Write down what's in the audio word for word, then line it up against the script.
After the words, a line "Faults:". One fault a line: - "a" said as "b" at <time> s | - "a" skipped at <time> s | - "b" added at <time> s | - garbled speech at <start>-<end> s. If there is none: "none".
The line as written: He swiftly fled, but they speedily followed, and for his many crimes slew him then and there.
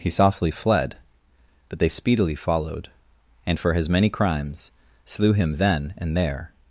He softly fled, but they speedily followed, and for his many crimes slew him then and there.
Faults:
- "swiftly" said as "softly" at 0.1 s